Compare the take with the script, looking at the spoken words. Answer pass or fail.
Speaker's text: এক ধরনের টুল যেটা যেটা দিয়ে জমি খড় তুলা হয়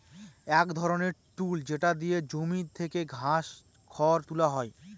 fail